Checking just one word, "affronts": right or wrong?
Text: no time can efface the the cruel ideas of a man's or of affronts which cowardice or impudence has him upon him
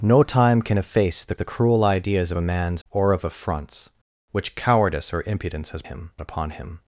right